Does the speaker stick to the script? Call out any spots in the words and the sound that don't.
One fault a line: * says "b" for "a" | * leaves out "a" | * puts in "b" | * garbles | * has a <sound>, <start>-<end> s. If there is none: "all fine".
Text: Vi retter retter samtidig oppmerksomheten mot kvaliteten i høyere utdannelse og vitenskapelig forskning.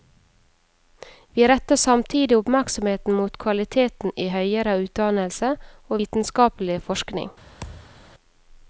* leaves out "retter"
* has a thud, 7.6-8.0 s